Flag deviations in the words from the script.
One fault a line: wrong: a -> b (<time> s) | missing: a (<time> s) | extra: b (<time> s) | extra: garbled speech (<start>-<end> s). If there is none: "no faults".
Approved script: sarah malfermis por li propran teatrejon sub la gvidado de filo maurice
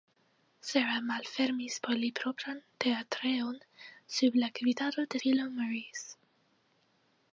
no faults